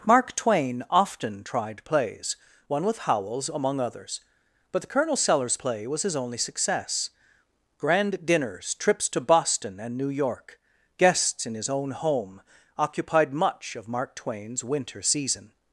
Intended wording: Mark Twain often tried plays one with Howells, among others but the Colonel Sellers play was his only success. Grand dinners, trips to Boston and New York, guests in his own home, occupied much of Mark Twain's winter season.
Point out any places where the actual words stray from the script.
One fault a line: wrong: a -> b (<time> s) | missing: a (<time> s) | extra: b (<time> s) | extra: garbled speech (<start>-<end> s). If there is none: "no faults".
no faults